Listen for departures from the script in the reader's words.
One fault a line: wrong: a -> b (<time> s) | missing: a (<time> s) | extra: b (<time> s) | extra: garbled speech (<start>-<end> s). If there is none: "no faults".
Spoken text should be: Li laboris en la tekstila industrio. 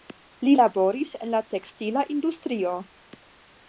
no faults